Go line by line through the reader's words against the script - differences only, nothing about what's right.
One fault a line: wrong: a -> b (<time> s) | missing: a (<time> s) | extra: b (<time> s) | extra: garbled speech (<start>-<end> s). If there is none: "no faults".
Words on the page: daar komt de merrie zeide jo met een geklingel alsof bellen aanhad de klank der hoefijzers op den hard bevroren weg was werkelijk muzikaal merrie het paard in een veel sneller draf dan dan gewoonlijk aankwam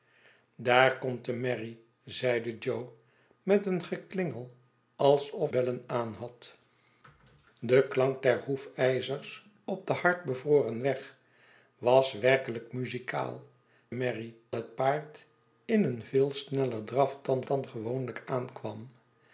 no faults